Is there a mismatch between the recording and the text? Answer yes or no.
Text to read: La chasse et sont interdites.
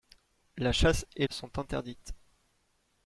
no